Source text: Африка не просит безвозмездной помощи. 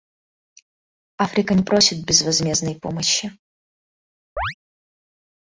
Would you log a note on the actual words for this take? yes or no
no